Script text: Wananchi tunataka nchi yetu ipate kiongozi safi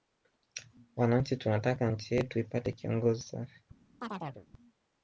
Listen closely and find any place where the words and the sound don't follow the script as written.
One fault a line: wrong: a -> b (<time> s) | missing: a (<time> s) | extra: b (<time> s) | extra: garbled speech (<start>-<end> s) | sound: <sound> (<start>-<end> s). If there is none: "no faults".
sound: chirp (4.0-4.5 s)